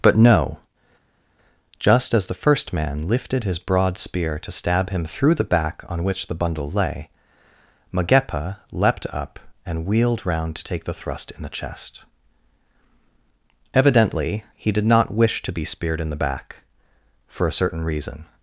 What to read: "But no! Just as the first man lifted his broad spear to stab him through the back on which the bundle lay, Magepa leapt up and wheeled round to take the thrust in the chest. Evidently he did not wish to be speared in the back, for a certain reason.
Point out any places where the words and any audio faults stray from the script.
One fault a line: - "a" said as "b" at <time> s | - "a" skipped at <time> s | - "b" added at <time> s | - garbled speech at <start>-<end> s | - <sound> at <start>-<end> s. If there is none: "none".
none